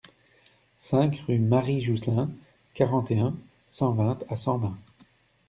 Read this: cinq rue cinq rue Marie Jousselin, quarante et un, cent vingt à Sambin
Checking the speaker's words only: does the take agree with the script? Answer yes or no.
no